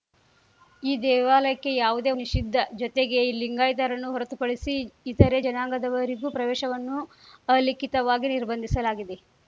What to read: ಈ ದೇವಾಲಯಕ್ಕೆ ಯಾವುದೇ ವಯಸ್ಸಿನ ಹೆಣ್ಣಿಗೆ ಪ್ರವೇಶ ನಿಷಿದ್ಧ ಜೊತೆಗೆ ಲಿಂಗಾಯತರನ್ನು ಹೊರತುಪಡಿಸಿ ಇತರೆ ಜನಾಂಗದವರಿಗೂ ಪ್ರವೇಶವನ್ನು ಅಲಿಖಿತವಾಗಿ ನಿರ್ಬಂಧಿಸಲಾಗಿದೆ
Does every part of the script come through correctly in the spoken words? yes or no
no